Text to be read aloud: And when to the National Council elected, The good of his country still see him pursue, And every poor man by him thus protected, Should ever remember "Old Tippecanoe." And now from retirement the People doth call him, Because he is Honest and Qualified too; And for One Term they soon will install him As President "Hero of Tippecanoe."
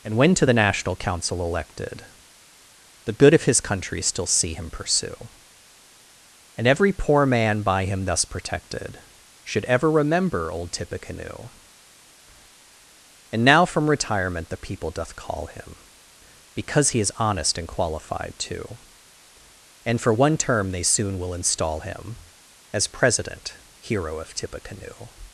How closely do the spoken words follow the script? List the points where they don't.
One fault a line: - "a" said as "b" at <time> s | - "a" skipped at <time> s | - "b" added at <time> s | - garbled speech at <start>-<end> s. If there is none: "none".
none